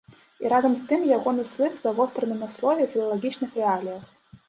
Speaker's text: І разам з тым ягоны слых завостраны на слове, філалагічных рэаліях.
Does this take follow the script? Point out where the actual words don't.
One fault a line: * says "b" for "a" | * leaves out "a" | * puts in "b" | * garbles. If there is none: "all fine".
all fine